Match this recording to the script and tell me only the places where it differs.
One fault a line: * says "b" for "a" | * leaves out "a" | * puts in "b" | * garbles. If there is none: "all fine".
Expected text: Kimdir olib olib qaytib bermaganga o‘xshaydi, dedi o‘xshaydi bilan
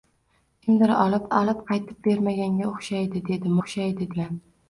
all fine